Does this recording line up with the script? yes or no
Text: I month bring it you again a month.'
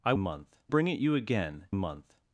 yes